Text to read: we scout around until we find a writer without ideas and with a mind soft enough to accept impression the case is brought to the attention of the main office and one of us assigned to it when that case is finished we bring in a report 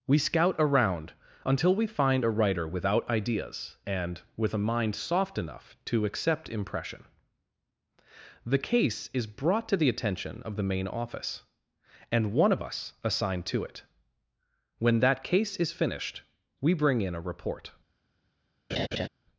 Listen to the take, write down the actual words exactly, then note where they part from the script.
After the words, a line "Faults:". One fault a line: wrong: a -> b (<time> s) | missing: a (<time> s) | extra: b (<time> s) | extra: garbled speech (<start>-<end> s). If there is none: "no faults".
we scout around until we find a writer without ideas and with a mind soft enough to accept impression the case is brought to the attention of the main office and one of us assigned to it when that case is finished we bring in a report
Faults:
no faults